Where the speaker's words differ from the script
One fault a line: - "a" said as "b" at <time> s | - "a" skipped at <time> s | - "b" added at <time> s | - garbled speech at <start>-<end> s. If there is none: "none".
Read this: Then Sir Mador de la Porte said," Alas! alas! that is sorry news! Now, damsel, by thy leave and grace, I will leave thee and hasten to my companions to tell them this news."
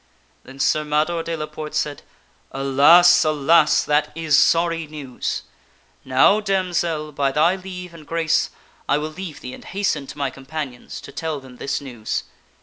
none